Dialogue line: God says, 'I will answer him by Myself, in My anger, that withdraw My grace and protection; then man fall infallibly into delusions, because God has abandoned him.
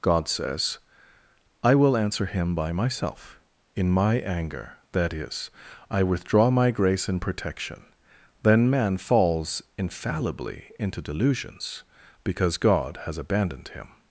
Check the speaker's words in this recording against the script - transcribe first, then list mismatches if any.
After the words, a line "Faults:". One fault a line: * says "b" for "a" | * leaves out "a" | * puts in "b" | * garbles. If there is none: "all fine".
God says, 'I will answer him by Myself, in My anger, that is, I withdraw My grace and protection; then man falls infallibly into delusions, because God has abandoned him.
Faults:
* puts in "is I"
* says "falls" for "fall"